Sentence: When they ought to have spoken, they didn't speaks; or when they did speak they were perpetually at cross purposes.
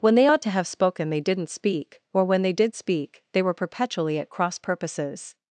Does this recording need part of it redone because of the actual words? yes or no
yes